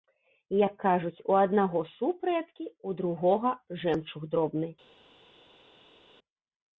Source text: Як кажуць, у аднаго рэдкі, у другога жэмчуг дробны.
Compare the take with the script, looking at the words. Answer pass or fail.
fail